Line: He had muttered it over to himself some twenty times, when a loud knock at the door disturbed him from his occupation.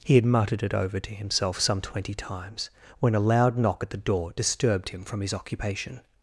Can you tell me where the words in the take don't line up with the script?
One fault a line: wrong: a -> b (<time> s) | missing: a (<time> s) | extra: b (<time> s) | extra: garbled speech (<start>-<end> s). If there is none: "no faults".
no faults